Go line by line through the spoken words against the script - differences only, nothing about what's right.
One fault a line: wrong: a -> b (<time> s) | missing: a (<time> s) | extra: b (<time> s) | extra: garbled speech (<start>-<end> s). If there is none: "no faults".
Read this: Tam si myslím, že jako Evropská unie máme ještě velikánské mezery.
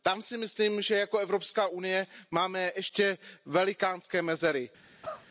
no faults